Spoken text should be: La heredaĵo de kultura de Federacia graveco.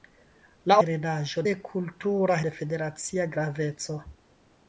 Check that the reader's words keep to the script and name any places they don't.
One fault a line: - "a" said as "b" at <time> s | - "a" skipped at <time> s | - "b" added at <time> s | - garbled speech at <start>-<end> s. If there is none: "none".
none